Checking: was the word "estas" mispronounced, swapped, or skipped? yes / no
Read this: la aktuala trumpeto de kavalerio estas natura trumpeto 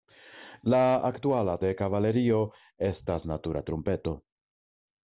no